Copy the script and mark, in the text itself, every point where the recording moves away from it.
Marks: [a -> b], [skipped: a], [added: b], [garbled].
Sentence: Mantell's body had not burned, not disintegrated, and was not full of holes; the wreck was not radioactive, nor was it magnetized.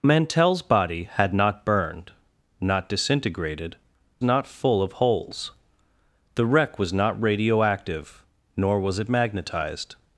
Mantell's body had not burned, not disintegrated, [skipped: and was] not full of holes; the wreck was not radioactive, nor was it magnetized.